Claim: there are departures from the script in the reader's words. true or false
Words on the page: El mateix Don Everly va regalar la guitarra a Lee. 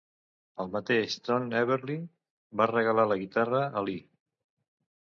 false